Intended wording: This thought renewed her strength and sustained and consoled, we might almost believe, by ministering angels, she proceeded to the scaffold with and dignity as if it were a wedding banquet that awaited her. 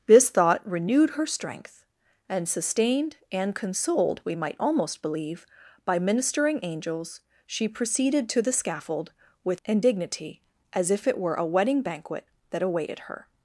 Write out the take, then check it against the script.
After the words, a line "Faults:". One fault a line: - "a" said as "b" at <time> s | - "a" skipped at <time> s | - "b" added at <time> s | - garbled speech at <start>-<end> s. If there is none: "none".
This thought renewed her strength and sustained and consoled, we might almost believe, by ministering angels, she proceeded to the scaffold with and dignity as if it were a wedding banquet that awaited her.
Faults:
none